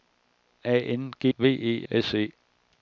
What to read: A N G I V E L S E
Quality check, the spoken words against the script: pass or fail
fail